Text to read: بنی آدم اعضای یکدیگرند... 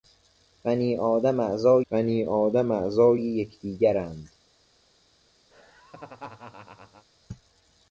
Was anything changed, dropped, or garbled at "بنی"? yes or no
no